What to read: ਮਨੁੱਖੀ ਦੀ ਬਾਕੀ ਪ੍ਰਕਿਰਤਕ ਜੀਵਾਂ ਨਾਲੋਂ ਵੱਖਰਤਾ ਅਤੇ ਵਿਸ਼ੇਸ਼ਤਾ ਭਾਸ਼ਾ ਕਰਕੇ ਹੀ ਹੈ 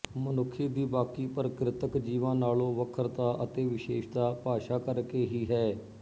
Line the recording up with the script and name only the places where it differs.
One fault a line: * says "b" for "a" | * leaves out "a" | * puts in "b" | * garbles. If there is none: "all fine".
all fine